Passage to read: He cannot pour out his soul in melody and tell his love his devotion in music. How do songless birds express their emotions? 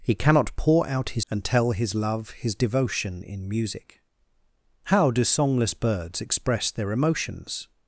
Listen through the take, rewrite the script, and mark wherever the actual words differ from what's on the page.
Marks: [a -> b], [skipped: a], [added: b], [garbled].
He cannot pour out his [skipped: soul in melody] and tell his love his devotion in music. How do songless birds express their emotions?